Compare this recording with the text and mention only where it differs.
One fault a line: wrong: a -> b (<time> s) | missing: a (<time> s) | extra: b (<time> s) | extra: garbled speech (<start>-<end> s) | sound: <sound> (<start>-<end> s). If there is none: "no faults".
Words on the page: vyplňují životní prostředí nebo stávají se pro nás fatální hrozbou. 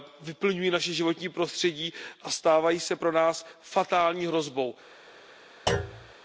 extra: naše (0.7 s)
wrong: nebo -> a (2.2 s)
sound: thud (5.7-6.1 s)